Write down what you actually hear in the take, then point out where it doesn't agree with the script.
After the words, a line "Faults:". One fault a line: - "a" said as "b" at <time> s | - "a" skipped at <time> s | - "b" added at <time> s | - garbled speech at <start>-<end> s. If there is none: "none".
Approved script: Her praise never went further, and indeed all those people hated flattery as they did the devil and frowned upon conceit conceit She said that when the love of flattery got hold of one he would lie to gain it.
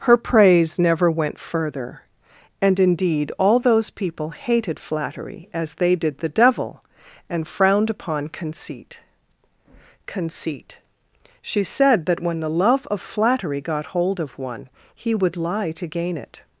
Her praise never went further, and indeed all those people hated flattery as they did the devil and frowned upon conceit conceit She said that when the love of flattery got hold of one he would lie to gain it.
Faults:
none